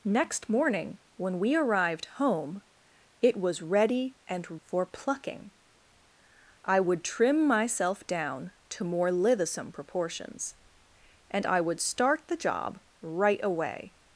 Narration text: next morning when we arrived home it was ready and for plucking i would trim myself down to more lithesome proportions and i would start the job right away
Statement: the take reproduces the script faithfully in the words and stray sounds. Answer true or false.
true